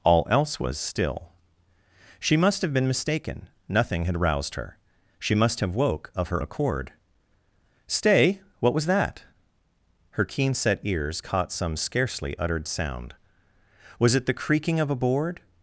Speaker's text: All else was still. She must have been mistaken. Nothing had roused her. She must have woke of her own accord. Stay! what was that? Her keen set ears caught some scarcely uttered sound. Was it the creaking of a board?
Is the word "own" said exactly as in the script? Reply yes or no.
no